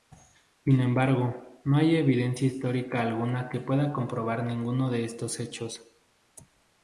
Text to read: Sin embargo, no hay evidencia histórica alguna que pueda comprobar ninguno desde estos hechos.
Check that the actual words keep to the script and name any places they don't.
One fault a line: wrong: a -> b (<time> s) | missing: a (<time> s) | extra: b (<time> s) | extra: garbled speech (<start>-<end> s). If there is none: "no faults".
wrong: desde -> de (4.9 s)